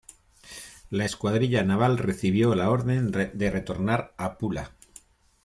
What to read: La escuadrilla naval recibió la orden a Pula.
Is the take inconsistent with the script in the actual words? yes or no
yes